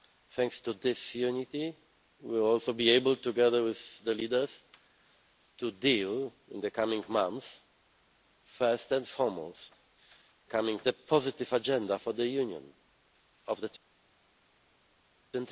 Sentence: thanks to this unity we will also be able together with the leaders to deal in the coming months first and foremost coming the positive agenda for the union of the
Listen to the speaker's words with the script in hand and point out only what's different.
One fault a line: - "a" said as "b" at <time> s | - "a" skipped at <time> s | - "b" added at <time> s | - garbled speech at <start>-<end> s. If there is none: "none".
none